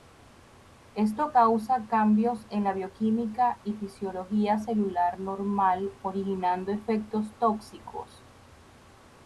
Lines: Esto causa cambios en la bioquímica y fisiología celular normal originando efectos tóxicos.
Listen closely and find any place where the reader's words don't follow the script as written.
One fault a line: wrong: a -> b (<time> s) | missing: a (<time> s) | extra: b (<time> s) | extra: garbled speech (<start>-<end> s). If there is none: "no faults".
no faults